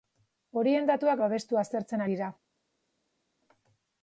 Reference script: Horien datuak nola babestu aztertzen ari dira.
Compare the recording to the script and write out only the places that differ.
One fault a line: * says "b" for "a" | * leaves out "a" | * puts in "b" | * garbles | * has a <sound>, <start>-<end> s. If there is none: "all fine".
* leaves out "nola"
* leaves out "ari"